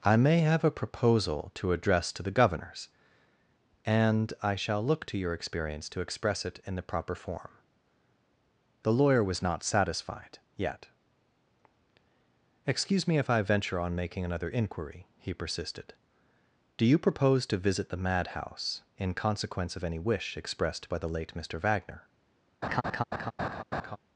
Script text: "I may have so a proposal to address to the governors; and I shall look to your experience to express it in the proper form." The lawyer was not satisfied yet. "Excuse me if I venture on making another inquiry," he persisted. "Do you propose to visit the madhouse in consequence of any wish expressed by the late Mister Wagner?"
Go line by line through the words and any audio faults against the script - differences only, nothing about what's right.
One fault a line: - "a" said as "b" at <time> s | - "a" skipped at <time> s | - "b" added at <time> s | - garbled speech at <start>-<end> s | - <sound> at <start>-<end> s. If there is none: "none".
- "so" skipped at 0.6 s
- laugh at 22.6-24.0 s